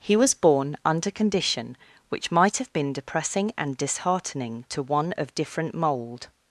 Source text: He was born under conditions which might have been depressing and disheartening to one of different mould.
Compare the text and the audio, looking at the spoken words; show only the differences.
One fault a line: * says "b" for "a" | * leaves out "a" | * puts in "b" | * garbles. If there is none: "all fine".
* says "condition" for "conditions"